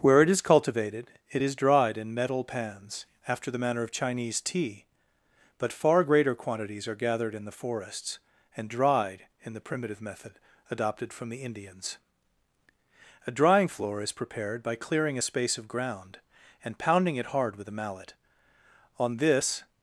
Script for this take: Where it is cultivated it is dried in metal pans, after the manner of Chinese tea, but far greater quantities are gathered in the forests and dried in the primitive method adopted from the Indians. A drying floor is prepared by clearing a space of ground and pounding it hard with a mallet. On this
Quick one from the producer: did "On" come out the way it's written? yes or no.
yes